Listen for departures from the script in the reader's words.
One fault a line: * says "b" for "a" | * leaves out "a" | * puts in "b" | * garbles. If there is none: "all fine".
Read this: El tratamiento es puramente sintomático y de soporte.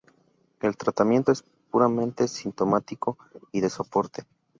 all fine